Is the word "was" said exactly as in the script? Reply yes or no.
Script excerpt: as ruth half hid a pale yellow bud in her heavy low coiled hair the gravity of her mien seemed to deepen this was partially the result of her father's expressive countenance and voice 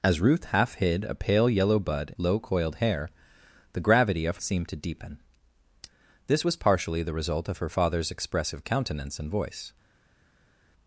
yes